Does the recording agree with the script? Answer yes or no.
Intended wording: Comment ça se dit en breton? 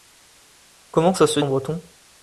no